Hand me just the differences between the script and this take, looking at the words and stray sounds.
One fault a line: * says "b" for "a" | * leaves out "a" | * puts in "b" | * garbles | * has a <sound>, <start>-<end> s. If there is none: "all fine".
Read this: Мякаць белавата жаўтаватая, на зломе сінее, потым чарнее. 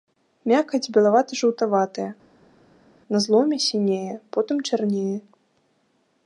all fine